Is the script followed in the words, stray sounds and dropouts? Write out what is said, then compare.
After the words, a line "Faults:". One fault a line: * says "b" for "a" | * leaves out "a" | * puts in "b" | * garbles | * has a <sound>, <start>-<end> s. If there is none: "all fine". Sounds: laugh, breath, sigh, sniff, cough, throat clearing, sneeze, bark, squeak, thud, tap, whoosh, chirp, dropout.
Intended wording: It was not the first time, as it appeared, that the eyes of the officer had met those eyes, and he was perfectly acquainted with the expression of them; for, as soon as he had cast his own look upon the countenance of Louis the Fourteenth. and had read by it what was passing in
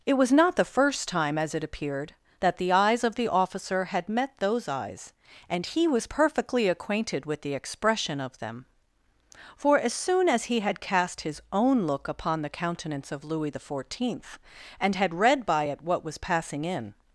It was not the first time, as it appeared, that the eyes of the officer had met those eyes, and he was perfectly acquainted with the expression of them; for, as soon as he had cast his own look upon the countenance of Louis the Fourteenth. and had read by it what was passing in
Faults:
all fine